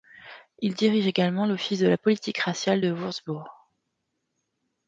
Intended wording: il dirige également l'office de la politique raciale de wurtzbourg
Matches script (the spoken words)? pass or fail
pass